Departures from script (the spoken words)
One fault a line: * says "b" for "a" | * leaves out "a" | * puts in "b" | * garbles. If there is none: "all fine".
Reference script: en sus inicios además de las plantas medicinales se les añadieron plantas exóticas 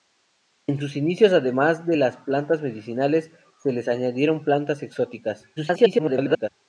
* garbles